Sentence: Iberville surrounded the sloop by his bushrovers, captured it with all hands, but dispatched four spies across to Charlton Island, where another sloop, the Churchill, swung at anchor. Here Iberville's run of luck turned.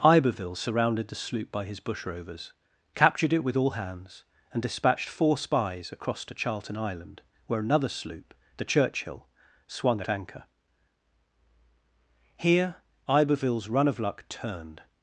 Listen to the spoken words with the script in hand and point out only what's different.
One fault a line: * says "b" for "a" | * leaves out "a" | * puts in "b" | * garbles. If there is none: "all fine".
* says "and" for "but"